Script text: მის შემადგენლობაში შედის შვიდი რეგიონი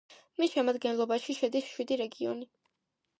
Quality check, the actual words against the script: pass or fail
pass